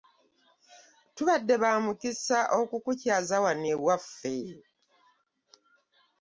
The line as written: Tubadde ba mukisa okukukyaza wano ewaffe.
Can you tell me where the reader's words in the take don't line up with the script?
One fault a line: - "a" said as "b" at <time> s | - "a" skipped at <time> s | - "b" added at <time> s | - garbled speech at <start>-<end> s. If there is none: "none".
none